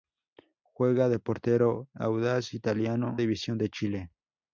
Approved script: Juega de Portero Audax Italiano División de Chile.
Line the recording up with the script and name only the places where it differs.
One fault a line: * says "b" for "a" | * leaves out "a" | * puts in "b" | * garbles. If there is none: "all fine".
all fine